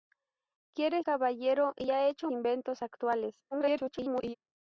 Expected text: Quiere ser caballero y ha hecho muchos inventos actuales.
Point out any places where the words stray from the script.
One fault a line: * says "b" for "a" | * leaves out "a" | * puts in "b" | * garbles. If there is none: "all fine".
* leaves out "ser"
* leaves out "muchos"
* garbles